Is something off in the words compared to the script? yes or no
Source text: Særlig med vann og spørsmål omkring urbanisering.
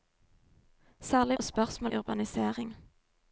yes